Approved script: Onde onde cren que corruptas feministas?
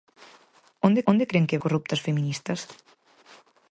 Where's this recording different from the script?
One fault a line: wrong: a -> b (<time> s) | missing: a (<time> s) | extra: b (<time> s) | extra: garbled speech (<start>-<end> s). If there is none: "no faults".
no faults